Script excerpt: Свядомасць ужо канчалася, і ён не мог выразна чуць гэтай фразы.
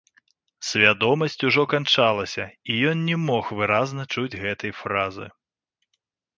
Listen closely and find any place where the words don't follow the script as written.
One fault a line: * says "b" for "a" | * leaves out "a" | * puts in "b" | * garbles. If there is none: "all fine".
all fine